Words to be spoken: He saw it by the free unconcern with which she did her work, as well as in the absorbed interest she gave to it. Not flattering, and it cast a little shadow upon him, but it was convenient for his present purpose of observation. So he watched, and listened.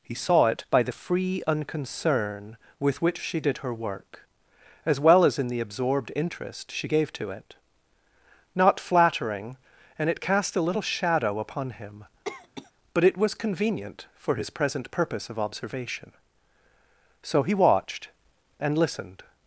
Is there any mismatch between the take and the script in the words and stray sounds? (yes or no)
yes